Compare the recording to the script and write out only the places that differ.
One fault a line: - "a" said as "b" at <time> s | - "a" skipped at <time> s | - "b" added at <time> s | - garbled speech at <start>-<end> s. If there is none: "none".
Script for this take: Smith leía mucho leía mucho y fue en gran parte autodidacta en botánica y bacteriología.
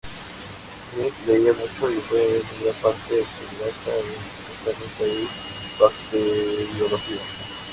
- "leía mucho" skipped at 1.9 s